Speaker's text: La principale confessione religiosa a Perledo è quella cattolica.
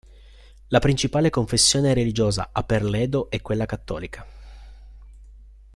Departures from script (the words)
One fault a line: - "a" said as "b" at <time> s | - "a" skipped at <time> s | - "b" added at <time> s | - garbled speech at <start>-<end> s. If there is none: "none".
none